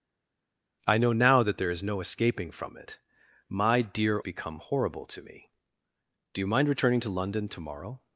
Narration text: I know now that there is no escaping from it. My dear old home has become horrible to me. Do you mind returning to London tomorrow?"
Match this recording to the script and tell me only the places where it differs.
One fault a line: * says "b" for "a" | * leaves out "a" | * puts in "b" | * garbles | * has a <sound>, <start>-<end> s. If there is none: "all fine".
* leaves out "old home has"